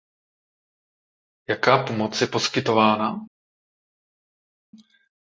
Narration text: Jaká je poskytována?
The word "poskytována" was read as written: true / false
true